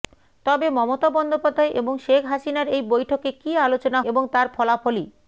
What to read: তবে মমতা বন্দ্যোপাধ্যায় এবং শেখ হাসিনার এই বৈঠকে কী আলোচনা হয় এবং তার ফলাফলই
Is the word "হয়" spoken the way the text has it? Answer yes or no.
no